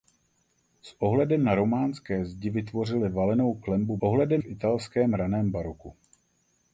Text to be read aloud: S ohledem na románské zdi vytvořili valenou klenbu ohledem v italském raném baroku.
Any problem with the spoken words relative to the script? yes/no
no